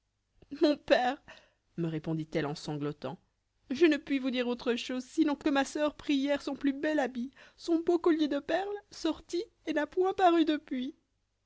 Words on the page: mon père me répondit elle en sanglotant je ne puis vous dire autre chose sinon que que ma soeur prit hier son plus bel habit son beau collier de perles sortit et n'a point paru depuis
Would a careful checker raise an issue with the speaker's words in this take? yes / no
no